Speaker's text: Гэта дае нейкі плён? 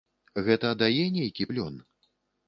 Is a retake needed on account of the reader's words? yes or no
no